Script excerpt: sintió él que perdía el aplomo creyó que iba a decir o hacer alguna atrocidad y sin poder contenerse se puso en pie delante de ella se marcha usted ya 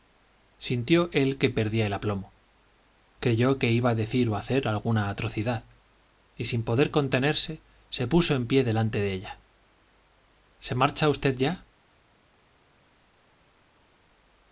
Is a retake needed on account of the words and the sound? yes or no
no